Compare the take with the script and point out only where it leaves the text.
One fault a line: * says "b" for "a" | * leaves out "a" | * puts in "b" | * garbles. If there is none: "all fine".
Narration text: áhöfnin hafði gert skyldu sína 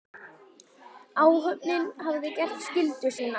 all fine